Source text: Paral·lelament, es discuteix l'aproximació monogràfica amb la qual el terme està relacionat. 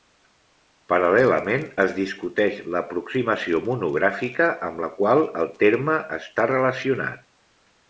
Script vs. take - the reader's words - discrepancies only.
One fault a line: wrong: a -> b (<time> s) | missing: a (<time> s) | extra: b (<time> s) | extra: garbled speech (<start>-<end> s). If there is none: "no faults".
no faults